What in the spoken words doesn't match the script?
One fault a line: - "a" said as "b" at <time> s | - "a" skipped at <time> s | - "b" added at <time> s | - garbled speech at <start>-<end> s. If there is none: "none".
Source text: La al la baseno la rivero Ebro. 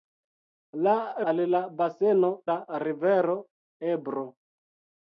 none